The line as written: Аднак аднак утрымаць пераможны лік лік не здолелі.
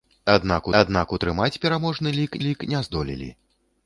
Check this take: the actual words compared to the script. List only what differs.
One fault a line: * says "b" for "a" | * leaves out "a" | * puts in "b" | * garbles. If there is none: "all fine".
all fine